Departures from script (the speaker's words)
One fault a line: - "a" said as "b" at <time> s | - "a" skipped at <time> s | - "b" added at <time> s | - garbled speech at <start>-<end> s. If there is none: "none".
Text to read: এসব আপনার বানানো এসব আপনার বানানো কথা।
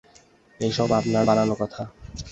- "এসব আপনার বানানো" skipped at 1.5 s